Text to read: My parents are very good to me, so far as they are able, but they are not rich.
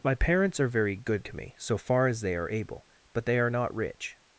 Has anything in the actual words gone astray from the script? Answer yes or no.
no